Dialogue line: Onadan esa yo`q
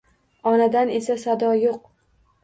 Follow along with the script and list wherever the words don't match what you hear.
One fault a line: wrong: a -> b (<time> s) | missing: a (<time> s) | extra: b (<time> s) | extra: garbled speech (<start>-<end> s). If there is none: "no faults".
extra: sado (1.2 s)